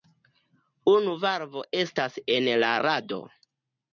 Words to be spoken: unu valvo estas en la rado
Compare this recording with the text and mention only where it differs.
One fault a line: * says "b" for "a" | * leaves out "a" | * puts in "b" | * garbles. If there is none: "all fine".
all fine